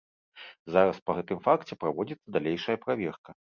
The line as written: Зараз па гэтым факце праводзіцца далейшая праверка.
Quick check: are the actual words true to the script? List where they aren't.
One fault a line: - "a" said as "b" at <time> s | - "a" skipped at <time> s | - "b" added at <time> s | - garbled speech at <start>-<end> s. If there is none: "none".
none